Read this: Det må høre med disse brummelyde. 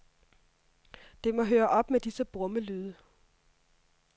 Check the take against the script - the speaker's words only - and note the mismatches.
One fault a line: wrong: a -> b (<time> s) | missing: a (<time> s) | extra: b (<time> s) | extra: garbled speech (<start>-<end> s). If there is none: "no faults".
extra: op (1.7 s)